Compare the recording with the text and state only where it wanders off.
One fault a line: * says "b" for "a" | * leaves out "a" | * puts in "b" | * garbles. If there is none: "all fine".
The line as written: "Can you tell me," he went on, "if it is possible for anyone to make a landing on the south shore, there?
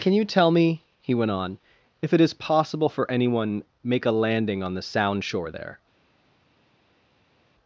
* leaves out "to"
* says "sound" for "south"